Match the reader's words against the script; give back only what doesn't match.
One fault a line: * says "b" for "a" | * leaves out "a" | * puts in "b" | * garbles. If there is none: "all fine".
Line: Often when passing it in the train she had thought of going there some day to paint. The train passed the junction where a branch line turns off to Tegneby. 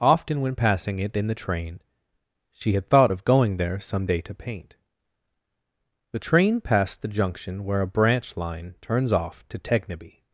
all fine